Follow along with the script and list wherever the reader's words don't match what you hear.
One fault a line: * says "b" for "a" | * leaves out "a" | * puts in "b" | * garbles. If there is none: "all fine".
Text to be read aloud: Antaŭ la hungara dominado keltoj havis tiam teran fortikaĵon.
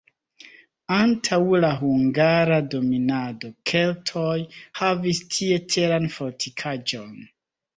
* says "tie" for "tiam"